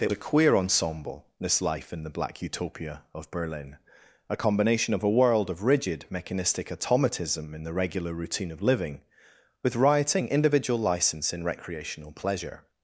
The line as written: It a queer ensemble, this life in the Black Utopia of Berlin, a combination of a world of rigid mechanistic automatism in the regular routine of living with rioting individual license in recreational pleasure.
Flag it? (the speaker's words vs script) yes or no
no